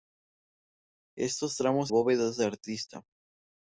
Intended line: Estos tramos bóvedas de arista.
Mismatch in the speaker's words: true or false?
false